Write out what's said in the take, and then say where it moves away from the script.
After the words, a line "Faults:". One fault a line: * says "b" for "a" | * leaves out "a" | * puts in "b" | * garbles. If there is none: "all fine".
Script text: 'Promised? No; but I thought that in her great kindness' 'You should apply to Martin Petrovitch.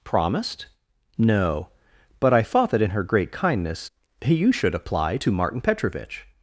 'Promised? No; but I thought that in her great kindness' 'You should apply to Martin Petrovitch.
Faults:
all fine